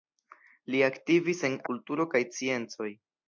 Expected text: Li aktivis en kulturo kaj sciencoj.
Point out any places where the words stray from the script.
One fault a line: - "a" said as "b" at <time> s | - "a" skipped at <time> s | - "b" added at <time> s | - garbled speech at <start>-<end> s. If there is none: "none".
none